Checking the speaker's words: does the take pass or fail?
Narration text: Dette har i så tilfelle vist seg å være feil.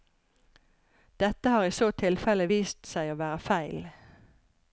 pass